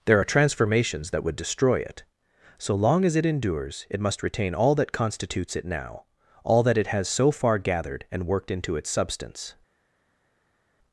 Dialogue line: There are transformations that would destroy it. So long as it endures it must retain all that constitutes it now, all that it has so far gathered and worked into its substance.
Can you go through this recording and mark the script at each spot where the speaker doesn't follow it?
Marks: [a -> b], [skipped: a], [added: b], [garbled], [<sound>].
There are transformations that would destroy it. So long as it endures it must retain all that constitutes it now, all that it has so far gathered and worked into its substance.